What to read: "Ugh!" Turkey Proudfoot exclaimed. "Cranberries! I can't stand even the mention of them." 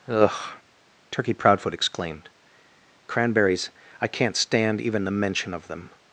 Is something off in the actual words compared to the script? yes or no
no